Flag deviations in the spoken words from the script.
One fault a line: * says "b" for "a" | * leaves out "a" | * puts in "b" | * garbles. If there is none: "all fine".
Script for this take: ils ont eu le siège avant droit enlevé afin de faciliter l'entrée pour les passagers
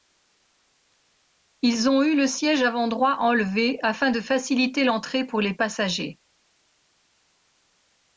all fine